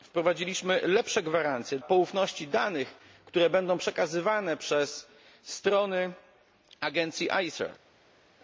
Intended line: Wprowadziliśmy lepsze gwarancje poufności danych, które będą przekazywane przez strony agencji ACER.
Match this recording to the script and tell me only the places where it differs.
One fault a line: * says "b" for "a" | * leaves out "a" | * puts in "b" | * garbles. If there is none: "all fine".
all fine